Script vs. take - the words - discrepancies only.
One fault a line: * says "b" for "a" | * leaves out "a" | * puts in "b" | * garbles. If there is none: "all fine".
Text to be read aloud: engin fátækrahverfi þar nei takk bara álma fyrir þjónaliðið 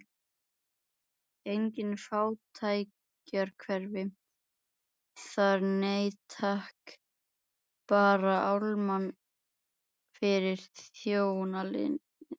all fine